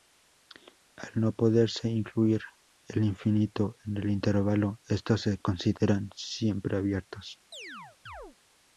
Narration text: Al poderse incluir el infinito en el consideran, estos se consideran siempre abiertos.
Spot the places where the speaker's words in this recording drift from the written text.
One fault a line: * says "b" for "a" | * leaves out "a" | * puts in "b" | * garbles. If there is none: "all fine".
* puts in "no"
* says "intervalo" for "consideran"